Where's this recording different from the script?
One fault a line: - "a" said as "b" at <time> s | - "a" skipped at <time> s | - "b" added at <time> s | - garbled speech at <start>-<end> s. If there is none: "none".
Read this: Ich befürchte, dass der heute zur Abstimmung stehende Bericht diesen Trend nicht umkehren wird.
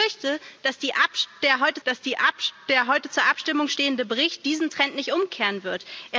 - "dass der heute" added at 1.8 s